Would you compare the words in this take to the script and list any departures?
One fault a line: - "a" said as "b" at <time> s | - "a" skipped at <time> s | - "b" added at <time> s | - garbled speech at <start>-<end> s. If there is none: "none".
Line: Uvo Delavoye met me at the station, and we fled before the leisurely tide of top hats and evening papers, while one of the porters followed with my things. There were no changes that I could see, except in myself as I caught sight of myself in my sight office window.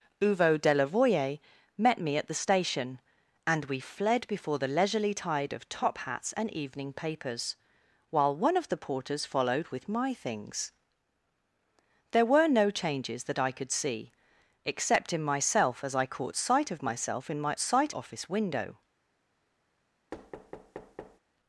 none